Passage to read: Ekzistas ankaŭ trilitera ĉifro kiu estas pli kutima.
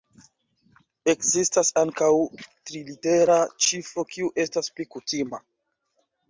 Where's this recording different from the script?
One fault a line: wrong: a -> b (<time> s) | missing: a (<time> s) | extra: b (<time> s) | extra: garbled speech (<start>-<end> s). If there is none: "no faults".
no faults